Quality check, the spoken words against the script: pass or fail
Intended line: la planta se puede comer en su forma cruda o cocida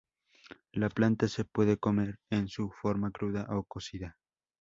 pass